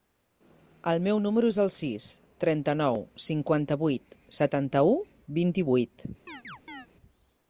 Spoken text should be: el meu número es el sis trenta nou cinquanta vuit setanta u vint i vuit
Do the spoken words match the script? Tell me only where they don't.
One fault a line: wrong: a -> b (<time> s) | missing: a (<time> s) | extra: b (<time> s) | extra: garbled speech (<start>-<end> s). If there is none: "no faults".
no faults